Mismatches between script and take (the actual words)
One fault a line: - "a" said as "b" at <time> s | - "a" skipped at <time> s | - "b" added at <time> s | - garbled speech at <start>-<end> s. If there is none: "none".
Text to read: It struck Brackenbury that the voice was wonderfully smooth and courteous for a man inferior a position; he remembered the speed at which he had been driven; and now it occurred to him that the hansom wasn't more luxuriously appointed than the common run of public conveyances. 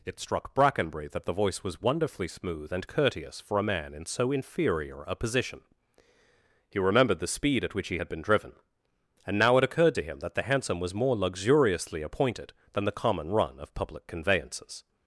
- "in so" added at 3.9 s
- "wasn't" said as "was" at 10.8 s